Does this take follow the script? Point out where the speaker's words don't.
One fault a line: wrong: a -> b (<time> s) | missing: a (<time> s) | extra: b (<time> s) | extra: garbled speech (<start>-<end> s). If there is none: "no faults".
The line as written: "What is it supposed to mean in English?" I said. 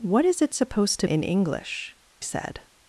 missing: mean (1.1 s)
missing: I (1.9 s)